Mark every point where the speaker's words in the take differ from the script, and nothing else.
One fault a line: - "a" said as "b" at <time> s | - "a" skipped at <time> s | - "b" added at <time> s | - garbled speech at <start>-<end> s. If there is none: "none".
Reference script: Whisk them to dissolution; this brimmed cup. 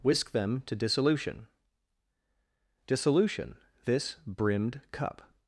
- "dissolution" added at 2.9 s